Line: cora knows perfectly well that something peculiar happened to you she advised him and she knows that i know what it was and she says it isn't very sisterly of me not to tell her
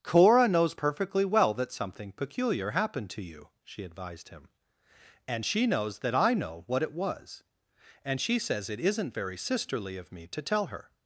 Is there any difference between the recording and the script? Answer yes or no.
yes